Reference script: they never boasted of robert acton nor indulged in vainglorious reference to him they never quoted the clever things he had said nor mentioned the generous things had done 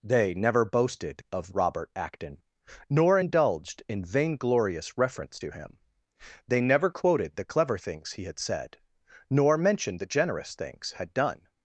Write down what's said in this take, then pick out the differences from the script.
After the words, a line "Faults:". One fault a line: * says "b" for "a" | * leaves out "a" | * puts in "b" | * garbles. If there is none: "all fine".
they never boasted of robert acton nor indulged in vainglorious reference to him they never quoted the clever things he had said nor mentioned the generous things had done
Faults:
all fine